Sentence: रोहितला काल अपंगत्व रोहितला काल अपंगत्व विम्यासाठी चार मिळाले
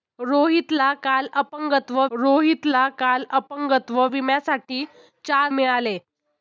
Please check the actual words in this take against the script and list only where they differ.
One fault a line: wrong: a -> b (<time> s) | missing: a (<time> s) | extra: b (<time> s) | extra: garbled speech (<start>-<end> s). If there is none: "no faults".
no faults